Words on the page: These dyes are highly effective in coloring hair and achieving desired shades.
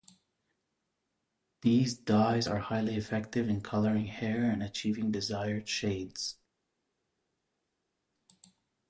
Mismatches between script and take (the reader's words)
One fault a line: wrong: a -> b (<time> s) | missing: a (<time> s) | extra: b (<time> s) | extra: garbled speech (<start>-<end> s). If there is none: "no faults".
no faults